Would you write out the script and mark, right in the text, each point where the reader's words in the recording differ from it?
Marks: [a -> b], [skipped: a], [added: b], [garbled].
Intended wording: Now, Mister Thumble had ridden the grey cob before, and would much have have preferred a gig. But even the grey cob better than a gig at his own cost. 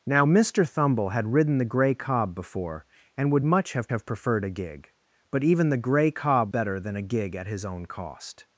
Now, Mister Thumble had ridden the grey cob before, and would much have have preferred a gig. But even the grey cob better than a gig at his own cost.